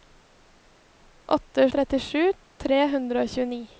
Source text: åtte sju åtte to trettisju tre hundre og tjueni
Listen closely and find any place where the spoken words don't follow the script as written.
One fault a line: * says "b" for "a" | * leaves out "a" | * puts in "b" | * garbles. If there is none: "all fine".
* leaves out "sju åtte to"